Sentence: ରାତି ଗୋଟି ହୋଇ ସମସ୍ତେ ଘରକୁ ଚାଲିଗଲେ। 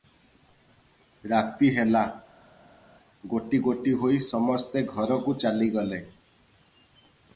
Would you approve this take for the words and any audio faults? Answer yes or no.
no